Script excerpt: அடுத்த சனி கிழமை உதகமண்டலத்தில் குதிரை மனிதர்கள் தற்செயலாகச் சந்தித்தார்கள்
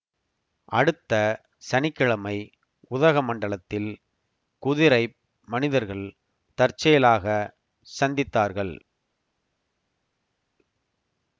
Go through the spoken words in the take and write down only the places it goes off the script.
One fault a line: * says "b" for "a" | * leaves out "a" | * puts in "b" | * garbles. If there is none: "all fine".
all fine